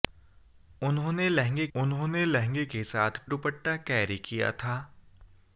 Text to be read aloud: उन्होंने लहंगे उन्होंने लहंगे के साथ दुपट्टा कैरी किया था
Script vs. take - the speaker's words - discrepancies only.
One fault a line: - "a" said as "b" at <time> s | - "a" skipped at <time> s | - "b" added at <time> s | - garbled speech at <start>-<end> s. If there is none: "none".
none